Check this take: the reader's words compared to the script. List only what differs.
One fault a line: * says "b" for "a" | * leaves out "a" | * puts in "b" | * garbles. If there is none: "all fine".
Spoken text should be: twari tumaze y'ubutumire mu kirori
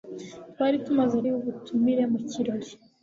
all fine